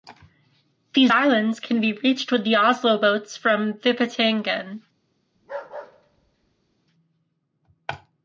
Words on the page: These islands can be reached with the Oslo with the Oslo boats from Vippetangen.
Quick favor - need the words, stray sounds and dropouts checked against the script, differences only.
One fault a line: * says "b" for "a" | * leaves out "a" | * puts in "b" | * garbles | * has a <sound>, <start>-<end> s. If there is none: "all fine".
* leaves out "with the Oslo"
* has a bark, 5.3-6.8 s